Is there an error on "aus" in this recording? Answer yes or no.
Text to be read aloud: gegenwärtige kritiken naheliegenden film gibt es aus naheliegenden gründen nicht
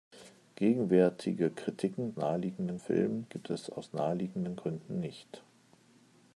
no